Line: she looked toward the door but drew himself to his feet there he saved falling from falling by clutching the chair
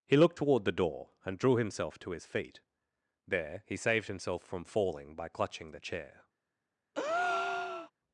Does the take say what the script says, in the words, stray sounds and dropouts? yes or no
no